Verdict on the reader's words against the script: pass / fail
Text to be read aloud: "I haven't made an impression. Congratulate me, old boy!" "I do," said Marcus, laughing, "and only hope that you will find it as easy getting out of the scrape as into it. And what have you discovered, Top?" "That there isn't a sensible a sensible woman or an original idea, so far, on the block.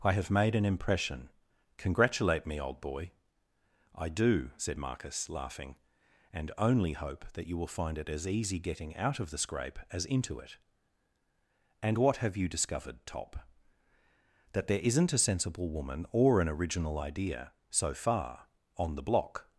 fail